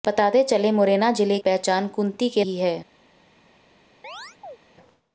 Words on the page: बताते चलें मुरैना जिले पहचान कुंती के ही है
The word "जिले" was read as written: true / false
true